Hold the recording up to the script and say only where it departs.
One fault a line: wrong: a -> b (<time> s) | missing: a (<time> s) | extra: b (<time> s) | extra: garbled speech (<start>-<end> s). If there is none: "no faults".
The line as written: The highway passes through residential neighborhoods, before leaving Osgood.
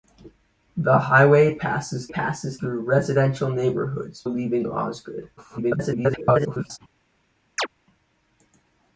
extra: passes (2.1 s)
missing: before (4.2 s)
extra: garbled speech (5.4-6.8 s)